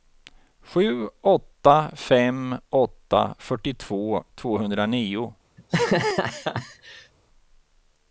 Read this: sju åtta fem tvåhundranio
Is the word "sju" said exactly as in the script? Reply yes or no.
yes